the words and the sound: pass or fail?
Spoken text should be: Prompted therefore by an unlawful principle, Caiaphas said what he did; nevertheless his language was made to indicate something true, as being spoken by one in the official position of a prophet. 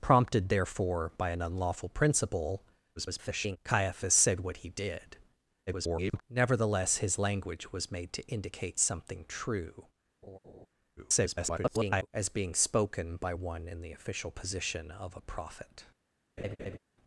fail